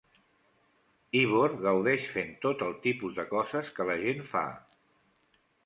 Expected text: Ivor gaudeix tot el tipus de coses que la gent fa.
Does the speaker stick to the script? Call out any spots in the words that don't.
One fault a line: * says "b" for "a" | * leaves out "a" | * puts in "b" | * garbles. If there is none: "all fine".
* puts in "fent"